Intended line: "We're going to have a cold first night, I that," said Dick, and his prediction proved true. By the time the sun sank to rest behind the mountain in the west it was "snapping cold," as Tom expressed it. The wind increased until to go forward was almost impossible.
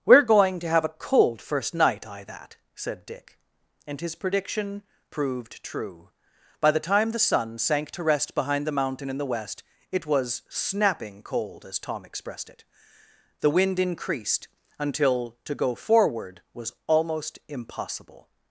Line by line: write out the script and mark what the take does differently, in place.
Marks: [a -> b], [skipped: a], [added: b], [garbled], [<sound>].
"We're going to have a cold first night, I that," said Dick, and his prediction proved true. By the time the sun sank to rest behind the mountain in the west it was "snapping cold," as Tom expressed it. The wind increased until to go forward was almost impossible.